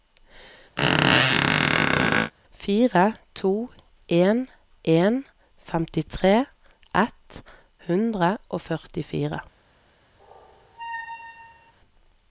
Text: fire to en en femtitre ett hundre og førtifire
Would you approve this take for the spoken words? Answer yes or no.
yes